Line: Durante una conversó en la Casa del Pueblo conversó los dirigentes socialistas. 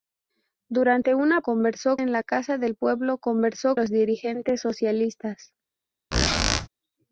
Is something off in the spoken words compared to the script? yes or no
no